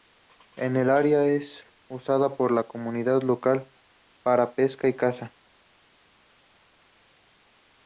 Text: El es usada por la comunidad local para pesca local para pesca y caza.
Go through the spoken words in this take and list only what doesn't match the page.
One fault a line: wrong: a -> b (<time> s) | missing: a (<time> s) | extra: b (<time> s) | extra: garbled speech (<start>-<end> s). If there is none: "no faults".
extra: área (0.9 s)
missing: local para pesca (4.9 s)